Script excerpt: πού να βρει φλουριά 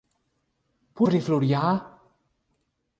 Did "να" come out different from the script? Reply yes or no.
yes